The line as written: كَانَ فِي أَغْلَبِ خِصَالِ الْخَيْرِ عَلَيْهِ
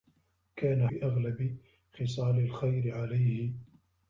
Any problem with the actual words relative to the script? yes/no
no